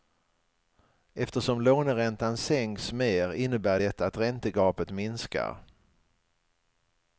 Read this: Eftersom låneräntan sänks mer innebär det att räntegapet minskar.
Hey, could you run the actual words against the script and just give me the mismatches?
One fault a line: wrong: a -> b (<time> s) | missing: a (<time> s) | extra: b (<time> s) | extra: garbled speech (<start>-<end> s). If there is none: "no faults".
no faults